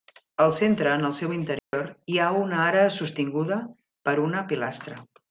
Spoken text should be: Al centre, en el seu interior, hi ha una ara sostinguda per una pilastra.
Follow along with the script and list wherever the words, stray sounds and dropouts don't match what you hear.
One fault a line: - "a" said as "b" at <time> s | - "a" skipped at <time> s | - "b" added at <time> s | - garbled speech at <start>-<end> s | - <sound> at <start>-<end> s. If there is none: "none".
- dropout at 1.6-1.7 s